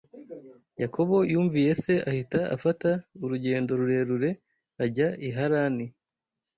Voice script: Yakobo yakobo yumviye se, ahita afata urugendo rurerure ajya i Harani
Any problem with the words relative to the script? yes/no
yes